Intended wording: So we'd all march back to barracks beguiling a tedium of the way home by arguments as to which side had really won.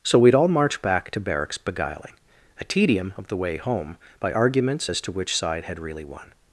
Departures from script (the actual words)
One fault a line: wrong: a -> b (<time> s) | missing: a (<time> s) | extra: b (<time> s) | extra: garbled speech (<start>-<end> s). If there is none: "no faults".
no faults